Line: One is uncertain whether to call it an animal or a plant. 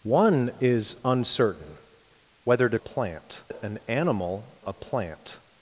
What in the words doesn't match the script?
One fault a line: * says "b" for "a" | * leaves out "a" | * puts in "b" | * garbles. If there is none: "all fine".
* says "plant" for "call"
* leaves out "or"